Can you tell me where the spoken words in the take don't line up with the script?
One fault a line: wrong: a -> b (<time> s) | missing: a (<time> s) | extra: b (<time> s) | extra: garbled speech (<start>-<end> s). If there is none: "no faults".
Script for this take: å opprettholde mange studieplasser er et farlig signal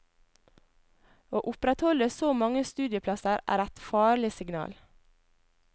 extra: så (2.1 s)